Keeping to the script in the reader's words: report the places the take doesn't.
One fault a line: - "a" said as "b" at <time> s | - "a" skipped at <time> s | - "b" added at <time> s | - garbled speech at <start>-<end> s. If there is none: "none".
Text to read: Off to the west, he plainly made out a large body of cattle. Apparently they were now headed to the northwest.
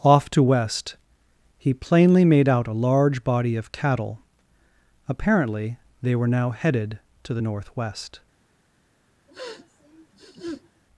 - "the" skipped at 0.4 s